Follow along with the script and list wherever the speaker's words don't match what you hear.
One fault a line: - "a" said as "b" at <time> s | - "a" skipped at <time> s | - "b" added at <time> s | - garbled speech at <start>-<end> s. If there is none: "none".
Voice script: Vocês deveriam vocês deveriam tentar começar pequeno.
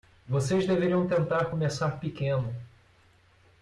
- "vocês deveriam" skipped at 1.1 s